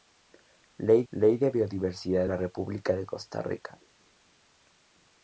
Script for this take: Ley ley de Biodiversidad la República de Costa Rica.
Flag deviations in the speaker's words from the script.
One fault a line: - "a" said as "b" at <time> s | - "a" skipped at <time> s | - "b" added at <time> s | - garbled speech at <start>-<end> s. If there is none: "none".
none